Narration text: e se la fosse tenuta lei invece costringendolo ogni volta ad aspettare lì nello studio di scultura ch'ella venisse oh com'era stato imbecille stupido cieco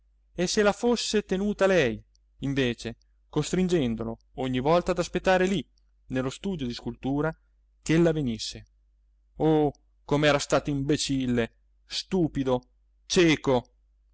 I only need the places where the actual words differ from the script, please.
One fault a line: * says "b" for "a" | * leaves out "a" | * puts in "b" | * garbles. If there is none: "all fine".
all fine